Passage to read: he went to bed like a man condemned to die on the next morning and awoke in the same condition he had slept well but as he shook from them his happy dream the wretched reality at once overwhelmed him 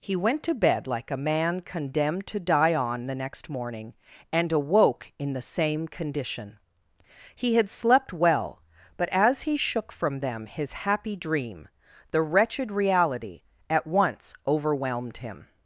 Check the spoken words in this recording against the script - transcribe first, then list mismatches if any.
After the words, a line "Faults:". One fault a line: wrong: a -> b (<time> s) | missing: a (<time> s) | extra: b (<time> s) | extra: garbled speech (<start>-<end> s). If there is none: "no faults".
he went to bed like a man condemned to die on the next morning and awoke in the same condition he had slept well but as he shook from them his happy dream the wretched reality at once overwhelmed him
Faults:
no faults